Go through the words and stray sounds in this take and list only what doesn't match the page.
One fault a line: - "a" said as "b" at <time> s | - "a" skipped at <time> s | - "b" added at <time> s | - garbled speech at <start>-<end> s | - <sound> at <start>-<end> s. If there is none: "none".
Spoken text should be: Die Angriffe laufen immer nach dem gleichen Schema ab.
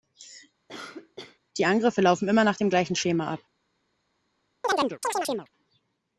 - cough at 0.7-1.4 s
- chirp at 4.6-5.5 s